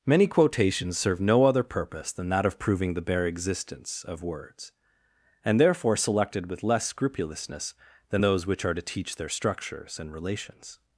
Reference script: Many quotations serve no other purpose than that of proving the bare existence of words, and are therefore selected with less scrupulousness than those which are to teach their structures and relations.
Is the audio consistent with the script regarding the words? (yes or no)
no